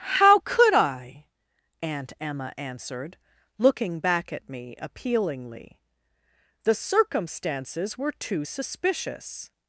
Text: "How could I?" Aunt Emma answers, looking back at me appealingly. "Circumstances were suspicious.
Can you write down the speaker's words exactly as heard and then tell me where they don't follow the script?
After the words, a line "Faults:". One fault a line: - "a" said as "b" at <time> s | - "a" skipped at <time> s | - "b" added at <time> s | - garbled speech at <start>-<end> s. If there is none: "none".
"How could I?" Aunt Emma answered, looking back at me appealingly. "The circumstances were too suspicious.
Faults:
- "answers" said as "answered" at 2.6 s
- "The" added at 6.6 s
- "too" added at 8.1 s